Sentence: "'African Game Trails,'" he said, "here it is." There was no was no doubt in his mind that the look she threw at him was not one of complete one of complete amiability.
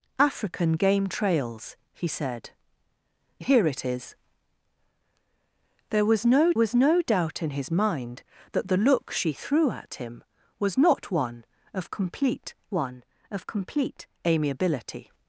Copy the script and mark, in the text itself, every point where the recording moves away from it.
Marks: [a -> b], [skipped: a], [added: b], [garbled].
"'African Game Trails,'" he said, "here it is." There was no was no doubt in his mind that the look she threw at him was not one of complete one of complete amiability.